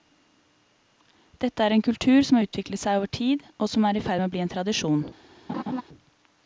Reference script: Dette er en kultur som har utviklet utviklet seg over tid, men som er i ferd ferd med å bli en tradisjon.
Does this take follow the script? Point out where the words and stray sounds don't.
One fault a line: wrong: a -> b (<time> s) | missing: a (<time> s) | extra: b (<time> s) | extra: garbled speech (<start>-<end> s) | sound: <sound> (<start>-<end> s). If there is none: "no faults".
missing: utviklet (2.8 s)
wrong: men -> og (3.6 s)
missing: ferd (4.2 s)
sound: laugh (5.5-5.8 s)